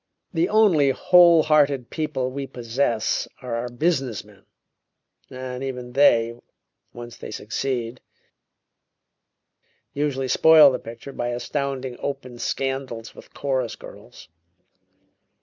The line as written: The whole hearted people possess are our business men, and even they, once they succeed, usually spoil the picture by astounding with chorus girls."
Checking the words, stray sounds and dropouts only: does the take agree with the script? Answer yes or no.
no